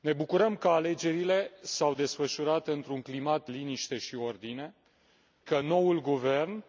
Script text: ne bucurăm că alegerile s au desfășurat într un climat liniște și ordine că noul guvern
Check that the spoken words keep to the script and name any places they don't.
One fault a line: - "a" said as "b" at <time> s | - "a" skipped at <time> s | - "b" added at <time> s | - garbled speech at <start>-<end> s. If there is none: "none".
none